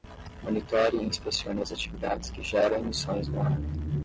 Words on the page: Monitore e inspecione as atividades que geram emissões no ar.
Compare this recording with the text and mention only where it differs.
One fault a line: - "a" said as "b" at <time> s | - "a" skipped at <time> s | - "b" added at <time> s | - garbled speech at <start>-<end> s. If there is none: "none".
none